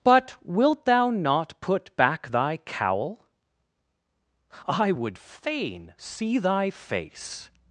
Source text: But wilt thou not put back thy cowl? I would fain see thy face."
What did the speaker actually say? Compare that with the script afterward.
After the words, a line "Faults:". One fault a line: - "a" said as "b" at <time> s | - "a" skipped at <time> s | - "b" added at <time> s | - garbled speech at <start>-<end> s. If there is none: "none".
But wilt thou not put back thy cowl? I would fain see thy face."
Faults:
none